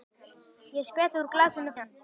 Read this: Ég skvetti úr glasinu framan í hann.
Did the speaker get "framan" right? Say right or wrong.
wrong